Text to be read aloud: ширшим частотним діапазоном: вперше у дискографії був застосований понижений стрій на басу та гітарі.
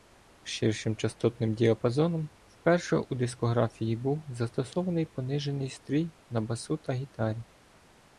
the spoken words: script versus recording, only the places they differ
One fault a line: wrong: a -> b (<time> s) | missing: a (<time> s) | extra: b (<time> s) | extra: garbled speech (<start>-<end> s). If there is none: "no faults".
no faults